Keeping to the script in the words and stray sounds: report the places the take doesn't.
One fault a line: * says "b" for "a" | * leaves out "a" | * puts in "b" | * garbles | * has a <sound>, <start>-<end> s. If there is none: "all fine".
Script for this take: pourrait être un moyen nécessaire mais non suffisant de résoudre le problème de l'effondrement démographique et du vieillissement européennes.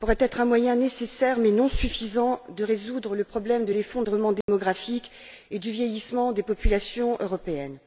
* has a dropout, 4.4-4.5 s
* puts in "des populations"